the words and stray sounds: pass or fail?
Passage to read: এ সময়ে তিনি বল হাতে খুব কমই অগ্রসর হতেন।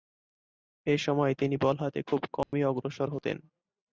fail